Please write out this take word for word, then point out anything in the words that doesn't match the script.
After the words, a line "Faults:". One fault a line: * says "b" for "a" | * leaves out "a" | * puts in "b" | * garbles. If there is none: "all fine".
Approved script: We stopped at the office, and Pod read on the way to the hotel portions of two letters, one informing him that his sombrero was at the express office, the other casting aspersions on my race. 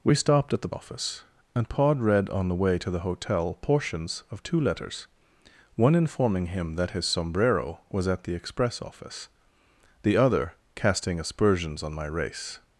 We stopped at the office, and Pod read on the way to the hotel portions of two letters, one informing him that his sombrero was at the express office, the other casting aspersions on my race.
Faults:
all fine